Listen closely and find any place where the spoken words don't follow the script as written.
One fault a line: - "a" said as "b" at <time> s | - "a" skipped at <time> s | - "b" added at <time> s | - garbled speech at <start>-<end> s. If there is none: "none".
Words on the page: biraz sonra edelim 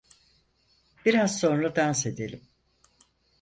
- "dans" added at 1.8 s